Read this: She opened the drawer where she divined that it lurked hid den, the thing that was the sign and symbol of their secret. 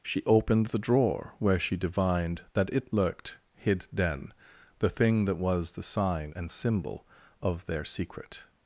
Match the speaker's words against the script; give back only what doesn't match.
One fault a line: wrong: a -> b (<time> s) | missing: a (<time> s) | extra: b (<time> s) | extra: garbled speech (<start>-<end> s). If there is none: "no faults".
no faults